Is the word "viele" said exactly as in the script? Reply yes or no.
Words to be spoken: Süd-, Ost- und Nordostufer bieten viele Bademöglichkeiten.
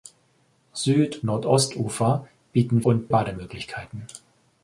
no